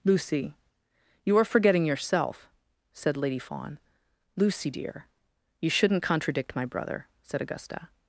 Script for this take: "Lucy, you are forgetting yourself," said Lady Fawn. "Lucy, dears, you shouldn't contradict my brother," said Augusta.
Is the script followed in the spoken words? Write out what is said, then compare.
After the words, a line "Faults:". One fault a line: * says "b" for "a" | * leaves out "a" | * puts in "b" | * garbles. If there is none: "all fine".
"Lucy, you are forgetting yourself," said Lady Fawn. "Lucy, dear, you shouldn't contradict my brother," said Augusta.
Faults:
* says "dear" for "dears"